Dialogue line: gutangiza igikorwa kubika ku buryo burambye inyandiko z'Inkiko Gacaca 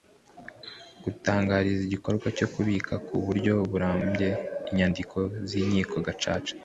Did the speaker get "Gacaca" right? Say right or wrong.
right